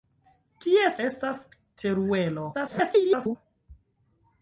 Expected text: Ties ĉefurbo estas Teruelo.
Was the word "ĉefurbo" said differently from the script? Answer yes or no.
yes